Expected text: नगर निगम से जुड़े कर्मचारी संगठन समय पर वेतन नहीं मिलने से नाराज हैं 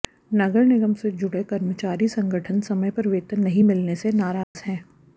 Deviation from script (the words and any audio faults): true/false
true